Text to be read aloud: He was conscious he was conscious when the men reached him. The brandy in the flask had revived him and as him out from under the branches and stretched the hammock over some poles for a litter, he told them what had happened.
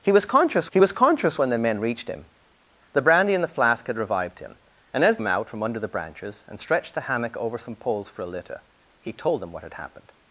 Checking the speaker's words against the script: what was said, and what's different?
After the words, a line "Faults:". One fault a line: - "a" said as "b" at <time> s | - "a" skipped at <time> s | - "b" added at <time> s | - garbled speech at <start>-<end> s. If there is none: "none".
He was conscious he was conscious when the men reached him. The brandy in the flask had revived him and as him out from under the branches and stretched the hammock over some poles for a litter, he told them what had happened.
Faults:
none